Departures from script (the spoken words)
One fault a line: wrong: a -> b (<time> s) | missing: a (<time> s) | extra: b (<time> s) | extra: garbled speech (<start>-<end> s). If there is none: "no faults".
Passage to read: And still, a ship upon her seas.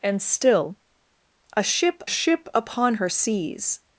extra: ship (2.0 s)